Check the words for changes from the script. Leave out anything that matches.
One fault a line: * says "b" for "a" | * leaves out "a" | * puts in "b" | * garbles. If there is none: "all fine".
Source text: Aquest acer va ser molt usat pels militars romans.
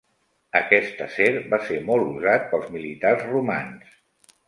all fine